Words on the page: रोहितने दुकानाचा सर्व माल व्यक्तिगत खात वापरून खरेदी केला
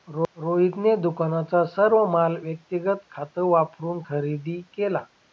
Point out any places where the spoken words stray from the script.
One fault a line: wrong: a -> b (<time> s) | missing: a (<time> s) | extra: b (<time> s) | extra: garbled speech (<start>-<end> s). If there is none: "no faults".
no faults